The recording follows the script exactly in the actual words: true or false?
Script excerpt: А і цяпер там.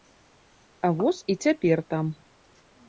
false